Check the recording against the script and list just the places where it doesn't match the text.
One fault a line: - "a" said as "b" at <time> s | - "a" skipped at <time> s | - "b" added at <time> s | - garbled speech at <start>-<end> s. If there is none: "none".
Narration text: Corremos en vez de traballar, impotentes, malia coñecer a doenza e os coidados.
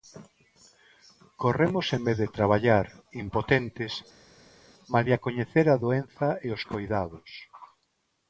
none